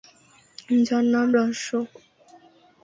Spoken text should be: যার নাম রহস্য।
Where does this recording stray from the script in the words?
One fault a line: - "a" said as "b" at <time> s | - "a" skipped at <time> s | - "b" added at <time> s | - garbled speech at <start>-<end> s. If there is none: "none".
none